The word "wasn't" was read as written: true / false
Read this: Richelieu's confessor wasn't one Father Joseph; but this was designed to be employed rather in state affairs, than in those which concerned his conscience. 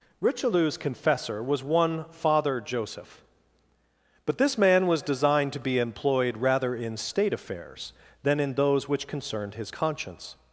false